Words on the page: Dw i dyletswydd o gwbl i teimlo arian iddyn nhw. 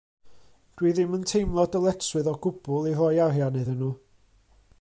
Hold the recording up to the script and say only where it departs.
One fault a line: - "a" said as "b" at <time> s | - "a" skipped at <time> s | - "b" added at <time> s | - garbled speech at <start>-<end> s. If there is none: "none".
- "ddim yn teimlo" added at 1.0 s
- "teimlo" said as "roi" at 3.0 s